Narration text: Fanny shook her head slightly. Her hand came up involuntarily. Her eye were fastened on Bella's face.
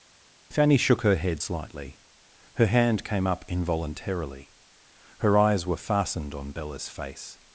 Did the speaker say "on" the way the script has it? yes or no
yes